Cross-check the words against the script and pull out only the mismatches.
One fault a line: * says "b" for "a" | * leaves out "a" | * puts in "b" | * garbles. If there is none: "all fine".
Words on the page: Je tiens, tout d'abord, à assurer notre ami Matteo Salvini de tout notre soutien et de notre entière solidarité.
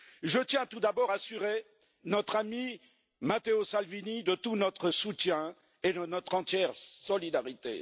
all fine